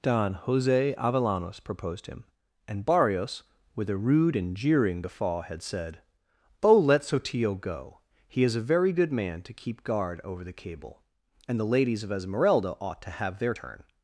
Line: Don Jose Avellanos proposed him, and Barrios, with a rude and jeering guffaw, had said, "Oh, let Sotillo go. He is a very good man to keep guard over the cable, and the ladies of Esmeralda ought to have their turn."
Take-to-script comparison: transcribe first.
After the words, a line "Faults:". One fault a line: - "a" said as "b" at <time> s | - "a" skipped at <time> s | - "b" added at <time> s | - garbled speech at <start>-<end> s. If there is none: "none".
Don Jose Avellanos proposed him, and Barrios, with a rude and jeering guffaw, had said, "Oh, let Sotillo go. He is a very good man to keep guard over the cable, and the ladies of Esmeralda ought to have their turn."
Faults:
none